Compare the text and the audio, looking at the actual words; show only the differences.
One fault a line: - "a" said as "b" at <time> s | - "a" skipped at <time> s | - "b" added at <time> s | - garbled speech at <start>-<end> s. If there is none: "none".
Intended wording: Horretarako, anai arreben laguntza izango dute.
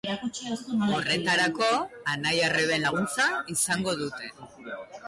none